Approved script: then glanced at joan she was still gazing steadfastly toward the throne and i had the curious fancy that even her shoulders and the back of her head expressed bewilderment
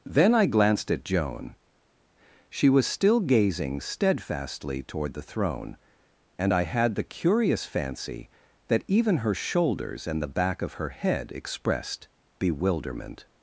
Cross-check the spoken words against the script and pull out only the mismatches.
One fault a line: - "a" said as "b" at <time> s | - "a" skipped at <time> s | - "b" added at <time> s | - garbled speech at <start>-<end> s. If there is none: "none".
- "i" added at 0.3 s